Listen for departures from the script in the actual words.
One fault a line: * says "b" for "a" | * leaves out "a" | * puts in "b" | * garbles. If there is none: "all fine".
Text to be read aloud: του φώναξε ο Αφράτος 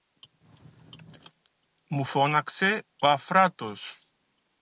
* says "μου" for "του"